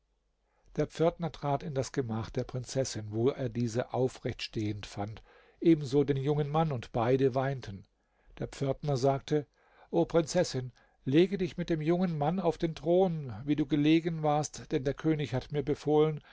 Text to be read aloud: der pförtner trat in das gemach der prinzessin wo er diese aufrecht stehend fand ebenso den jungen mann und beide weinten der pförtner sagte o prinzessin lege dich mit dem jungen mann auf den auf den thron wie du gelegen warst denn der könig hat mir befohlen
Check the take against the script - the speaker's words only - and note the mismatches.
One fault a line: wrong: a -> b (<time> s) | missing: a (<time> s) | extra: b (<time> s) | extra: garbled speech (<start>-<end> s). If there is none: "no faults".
missing: auf den (12.7 s)